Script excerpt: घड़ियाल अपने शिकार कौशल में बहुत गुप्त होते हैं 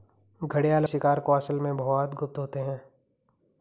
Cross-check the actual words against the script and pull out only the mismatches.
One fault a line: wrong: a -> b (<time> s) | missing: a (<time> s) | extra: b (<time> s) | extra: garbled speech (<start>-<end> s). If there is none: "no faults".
missing: अपने (0.8 s)